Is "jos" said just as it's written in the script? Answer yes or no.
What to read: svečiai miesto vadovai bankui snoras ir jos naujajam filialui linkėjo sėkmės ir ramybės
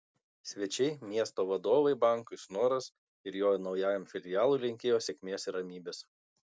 no